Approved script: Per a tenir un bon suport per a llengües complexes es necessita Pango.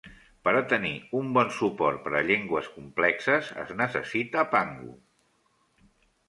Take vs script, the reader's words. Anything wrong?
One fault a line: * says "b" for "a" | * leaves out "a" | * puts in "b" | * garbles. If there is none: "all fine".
all fine